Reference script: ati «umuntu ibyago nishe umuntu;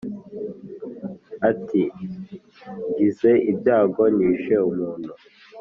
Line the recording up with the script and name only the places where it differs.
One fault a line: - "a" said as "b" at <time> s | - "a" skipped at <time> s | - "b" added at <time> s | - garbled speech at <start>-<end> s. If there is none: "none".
- "umuntu" said as "ngize" at 2.9 s